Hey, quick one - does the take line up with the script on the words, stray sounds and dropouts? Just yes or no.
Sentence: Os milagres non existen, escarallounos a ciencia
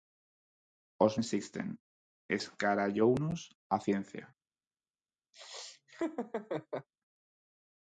no